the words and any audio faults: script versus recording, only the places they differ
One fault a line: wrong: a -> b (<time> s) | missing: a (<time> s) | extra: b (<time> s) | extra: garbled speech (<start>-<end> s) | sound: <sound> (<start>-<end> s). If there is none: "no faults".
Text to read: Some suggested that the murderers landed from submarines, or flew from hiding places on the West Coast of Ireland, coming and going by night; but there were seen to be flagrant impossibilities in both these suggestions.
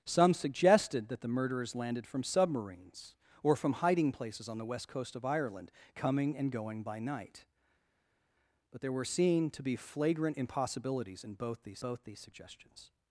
missing: flew (3.5 s)
extra: both these (11.8 s)